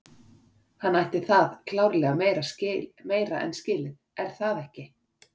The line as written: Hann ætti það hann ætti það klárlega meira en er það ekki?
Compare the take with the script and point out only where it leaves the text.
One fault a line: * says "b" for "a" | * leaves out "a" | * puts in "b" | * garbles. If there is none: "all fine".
* leaves out "hann ætti það"
* puts in "skilið"